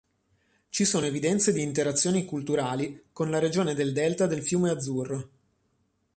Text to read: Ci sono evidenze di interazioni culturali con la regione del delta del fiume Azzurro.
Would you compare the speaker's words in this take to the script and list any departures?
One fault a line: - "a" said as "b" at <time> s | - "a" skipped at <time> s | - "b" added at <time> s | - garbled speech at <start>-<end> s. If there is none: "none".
none